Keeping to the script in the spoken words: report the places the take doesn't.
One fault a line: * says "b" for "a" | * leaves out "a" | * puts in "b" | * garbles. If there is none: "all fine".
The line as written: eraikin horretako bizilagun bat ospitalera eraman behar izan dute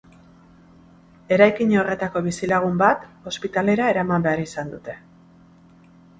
all fine